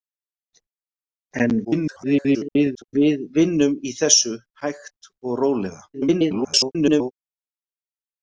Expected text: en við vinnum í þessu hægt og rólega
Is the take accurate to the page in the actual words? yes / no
no